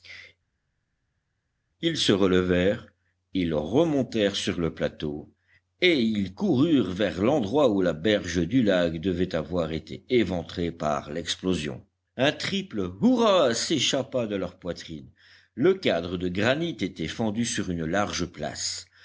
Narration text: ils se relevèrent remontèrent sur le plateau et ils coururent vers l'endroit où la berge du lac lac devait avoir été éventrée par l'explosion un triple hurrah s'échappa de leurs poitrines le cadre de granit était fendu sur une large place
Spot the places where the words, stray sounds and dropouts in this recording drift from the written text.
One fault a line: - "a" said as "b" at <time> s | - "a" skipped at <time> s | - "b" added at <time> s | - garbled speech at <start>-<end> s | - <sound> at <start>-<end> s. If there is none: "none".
- "ils" added at 3.3 s
- "lac" skipped at 9.0 s